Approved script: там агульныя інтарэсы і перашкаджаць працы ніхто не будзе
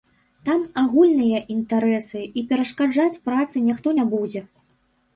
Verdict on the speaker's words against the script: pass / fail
pass